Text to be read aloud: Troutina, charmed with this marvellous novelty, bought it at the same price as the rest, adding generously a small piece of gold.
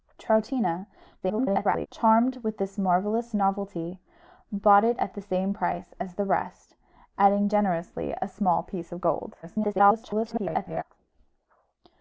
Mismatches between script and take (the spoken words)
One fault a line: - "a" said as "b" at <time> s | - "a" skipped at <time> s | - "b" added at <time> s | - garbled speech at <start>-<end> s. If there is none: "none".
- garbled speech at 1.2-1.9 s
- garbled speech at 9.4-10.8 s